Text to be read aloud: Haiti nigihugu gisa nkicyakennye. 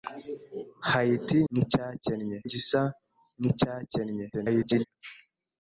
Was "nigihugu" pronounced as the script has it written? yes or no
no